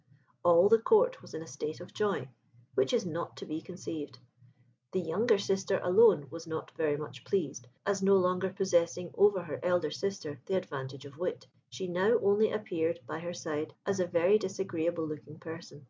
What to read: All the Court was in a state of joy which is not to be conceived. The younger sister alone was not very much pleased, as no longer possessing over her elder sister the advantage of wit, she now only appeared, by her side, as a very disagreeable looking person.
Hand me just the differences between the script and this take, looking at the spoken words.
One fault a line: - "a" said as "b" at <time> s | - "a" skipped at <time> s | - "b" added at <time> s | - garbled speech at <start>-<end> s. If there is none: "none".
none